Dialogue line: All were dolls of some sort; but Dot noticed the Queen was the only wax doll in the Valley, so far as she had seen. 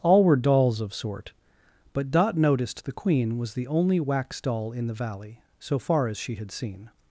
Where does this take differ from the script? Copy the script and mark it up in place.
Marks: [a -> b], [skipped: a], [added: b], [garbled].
All were dolls of [skipped: some] sort; but Dot noticed the Queen was the only wax doll in the Valley, so far as she had seen.